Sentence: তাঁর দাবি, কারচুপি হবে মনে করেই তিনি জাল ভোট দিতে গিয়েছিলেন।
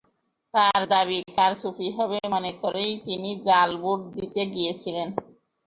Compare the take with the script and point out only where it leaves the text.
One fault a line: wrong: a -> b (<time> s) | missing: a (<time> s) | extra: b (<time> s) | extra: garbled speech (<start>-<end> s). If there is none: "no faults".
no faults